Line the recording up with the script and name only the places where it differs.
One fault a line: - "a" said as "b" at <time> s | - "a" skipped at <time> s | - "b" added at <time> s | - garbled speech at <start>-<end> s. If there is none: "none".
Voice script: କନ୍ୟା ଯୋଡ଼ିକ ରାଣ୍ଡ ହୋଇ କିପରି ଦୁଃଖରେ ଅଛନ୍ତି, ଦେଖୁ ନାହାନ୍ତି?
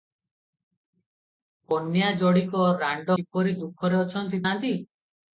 - "ହୋଇ" skipped at 3.2 s
- "ଦେଖୁ" skipped at 4.4 s